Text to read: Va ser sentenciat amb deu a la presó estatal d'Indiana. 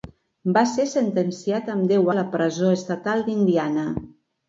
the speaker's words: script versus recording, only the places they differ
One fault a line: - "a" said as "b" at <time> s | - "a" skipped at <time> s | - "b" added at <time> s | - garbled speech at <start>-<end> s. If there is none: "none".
none